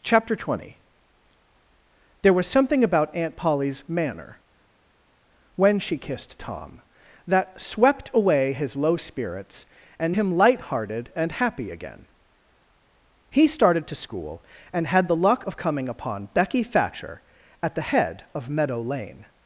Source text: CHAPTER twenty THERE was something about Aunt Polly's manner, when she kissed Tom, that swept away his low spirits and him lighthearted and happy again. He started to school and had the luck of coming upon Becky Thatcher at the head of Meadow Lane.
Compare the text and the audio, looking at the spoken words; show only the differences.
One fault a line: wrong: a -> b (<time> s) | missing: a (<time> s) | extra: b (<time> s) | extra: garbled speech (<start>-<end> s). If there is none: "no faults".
no faults